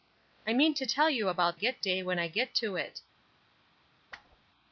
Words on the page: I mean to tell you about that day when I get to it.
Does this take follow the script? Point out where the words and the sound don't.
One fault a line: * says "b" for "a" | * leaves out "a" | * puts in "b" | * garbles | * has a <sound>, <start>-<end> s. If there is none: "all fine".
* says "get" for "that"
* has a whoosh, 4.1-4.5 s